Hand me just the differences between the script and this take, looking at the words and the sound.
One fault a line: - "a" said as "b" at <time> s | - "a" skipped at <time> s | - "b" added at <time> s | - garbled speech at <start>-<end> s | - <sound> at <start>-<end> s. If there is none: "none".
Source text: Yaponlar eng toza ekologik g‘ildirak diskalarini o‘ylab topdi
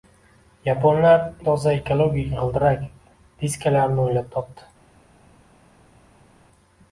- "eng" skipped at 1.2 s